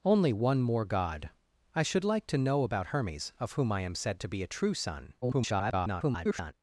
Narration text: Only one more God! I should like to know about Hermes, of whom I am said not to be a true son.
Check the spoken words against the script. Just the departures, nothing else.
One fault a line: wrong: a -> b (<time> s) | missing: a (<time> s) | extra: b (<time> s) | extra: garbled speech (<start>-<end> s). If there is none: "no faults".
missing: not (4.2 s)
extra: garbled speech (5.2-6.5 s)